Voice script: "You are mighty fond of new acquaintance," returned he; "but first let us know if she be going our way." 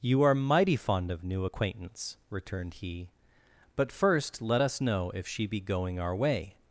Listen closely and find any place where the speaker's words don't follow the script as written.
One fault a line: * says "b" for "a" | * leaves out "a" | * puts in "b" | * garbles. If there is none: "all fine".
all fine